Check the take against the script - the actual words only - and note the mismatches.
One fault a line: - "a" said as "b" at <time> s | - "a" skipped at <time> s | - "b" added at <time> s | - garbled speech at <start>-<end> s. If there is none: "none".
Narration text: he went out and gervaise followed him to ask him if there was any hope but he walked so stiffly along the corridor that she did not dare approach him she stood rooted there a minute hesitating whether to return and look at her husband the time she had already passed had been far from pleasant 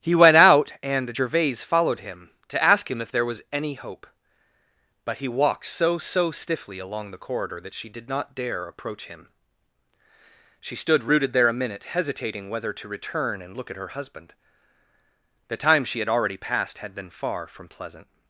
- "so" added at 6.0 s